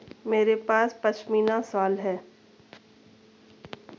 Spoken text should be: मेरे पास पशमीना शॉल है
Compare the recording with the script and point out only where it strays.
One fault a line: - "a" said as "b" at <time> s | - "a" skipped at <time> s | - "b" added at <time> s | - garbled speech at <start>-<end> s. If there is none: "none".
none